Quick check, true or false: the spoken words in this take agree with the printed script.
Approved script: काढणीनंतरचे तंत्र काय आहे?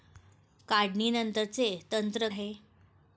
false